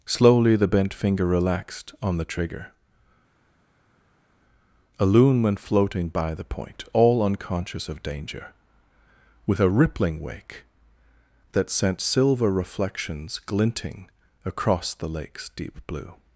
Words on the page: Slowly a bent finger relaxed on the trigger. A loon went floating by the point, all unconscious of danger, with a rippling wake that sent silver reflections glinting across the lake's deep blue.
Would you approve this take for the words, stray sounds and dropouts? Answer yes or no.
no